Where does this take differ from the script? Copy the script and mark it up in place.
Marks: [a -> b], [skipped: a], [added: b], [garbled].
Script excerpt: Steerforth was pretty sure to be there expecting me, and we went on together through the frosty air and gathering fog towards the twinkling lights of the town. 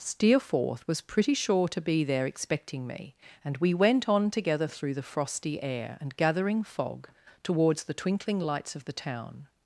Steerforth was pretty sure to be there expecting me, and we went on together through the frosty air and gathering fog towards the twinkling lights of the town.